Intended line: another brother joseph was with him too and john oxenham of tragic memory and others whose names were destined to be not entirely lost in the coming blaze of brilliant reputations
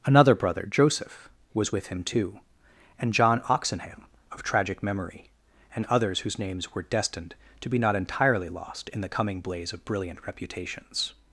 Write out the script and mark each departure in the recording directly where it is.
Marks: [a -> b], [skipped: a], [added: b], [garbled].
another brother joseph was with him too and john oxenham of tragic memory and others whose names were destined to be not entirely lost in the coming blaze of brilliant reputations